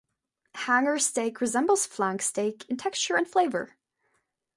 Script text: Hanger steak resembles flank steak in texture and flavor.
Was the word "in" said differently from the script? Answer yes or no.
no